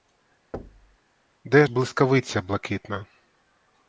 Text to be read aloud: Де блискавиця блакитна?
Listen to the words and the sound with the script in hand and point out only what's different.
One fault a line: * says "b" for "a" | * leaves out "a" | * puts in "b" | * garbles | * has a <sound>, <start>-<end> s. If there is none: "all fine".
* has a thud, 0.5-1.0 s